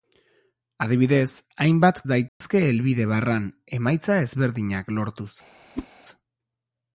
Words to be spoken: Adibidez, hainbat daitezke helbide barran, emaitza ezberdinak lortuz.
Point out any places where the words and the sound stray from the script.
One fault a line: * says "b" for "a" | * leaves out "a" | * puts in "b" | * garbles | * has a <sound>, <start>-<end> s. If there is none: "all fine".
* has a dropout, 2.3-2.4 s
* has a whoosh, 5.8-5.9 s